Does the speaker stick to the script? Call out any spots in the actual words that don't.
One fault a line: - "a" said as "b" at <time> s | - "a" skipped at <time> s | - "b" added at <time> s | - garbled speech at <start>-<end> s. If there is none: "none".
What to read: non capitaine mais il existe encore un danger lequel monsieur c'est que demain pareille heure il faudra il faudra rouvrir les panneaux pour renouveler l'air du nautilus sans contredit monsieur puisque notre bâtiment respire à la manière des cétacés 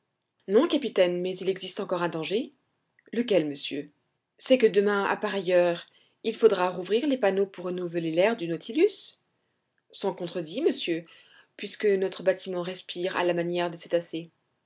- "à" added at 5.0 s
- "il faudra" skipped at 6.7 s